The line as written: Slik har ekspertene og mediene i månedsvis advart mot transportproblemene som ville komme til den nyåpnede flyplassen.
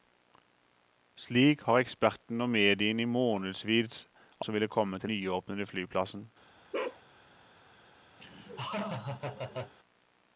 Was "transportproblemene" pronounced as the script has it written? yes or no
no